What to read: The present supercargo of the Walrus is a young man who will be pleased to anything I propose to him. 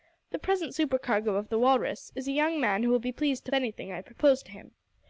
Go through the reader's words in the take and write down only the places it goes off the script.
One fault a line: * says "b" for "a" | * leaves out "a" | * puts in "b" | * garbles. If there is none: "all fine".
all fine